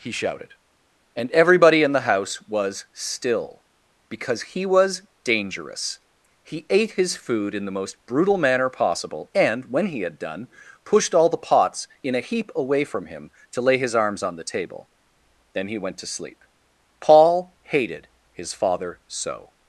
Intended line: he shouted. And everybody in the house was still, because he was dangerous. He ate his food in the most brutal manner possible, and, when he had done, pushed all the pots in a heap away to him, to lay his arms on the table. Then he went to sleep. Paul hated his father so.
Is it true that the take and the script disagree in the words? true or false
true